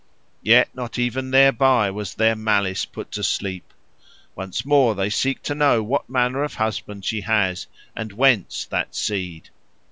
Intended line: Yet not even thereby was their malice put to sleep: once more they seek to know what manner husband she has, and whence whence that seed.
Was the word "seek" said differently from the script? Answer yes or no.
no